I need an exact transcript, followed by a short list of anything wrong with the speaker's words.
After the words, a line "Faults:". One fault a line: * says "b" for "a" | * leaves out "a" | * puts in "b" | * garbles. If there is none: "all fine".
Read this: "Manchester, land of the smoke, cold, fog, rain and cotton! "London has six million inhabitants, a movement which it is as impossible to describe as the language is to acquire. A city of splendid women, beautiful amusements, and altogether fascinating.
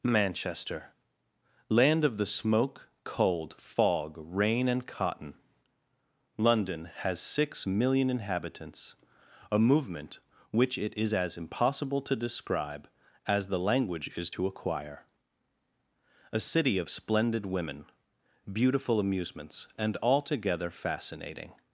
"Manchester, land of the smoke, cold, fog, rain and cotton! "London has six million inhabitants, a movement which it is as impossible to describe as the language is to acquire. A city of splendid women, beautiful amusements, and altogether fascinating.
Faults:
all fine